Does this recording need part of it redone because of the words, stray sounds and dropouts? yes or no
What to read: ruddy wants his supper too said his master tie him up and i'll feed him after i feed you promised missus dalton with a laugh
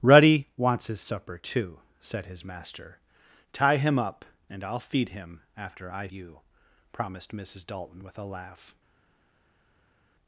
yes